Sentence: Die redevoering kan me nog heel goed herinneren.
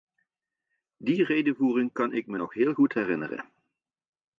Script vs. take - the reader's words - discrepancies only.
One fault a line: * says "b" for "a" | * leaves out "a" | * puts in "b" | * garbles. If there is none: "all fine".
* puts in "ik"